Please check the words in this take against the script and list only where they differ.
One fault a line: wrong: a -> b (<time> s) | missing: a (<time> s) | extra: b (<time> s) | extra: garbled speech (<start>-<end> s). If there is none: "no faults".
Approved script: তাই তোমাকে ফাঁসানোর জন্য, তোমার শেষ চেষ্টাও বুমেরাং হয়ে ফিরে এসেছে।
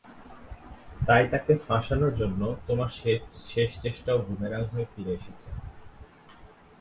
wrong: তোমাকে -> তাকে (1.3 s)